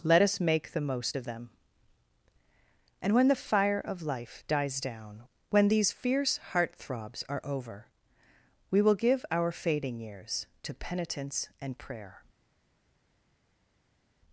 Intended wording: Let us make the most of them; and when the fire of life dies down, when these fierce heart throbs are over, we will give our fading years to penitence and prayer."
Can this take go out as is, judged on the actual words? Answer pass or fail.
pass